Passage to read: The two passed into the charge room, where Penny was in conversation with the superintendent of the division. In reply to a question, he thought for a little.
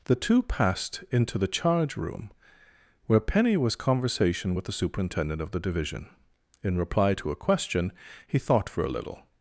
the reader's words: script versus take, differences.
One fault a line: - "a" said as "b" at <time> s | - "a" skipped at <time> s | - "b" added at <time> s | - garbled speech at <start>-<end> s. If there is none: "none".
- "in" skipped at 3.8 s